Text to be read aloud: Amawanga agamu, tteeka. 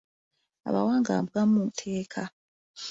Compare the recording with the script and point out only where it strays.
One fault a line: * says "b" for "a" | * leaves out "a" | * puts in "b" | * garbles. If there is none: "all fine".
all fine